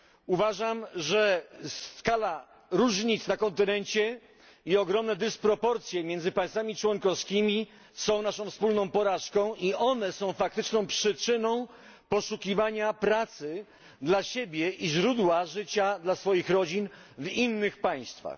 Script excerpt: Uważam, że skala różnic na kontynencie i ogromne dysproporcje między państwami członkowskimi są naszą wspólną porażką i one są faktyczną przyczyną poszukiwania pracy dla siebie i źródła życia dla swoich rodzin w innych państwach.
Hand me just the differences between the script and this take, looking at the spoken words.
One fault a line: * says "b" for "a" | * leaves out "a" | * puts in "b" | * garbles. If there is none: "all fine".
all fine